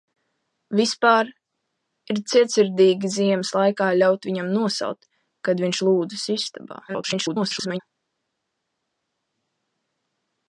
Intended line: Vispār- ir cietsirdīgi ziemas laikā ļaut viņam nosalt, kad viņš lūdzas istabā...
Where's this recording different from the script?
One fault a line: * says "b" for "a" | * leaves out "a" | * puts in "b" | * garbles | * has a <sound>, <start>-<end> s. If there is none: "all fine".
* garbles